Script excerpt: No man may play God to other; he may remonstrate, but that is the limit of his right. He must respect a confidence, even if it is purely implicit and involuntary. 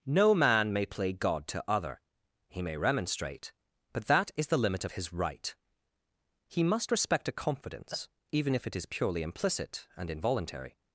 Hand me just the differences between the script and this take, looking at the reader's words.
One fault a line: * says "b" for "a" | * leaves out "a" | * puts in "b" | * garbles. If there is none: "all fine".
all fine